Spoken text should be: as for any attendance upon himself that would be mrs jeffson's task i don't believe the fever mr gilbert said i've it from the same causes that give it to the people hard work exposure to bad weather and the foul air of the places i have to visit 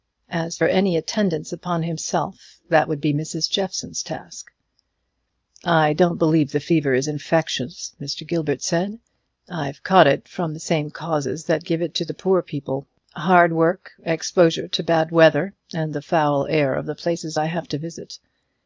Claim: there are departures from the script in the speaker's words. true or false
true